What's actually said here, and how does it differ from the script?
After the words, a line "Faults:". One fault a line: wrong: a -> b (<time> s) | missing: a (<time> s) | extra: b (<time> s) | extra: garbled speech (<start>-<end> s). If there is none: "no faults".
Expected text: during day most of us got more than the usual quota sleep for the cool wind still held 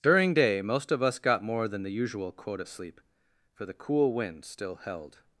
during day most of us got more than the usual quota sleep for the cool wind still held
Faults:
no faults